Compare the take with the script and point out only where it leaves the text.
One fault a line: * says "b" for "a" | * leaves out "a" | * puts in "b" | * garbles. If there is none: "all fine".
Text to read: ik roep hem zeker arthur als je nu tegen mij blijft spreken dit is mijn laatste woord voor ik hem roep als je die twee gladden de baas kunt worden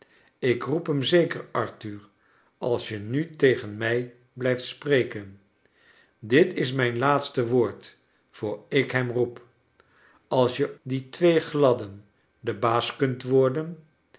all fine